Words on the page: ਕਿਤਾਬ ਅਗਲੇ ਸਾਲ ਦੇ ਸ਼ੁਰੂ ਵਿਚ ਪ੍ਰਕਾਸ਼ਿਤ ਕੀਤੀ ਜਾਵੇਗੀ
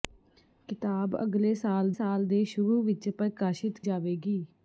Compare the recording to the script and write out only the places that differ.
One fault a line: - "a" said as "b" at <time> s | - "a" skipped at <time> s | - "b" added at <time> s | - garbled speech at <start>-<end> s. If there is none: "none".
- "ਸਾਲ" added at 1.9 s
- "ਕੀਤੀ" skipped at 3.8 s